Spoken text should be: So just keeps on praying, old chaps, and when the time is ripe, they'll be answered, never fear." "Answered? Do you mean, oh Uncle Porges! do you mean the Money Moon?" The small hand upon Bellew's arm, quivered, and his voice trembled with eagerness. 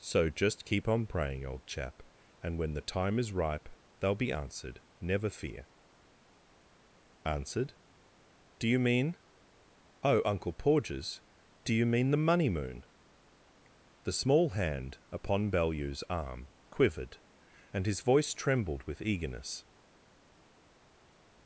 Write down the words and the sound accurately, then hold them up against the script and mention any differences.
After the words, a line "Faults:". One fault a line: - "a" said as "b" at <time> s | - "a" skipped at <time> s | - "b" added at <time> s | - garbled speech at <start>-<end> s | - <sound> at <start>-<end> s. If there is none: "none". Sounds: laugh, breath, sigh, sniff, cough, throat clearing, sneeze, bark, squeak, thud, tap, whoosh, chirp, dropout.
So just keep on praying, old chap, and when the time is ripe, they'll be answered, never fear." "Answered? Do you mean, oh Uncle Porges! do you mean the Money Moon?" The small hand upon Bellew's arm, quivered, and his voice trembled with eagerness.
Faults:
- "keeps" said as "keep" at 0.7 s
- "chaps" said as "chap" at 1.7 s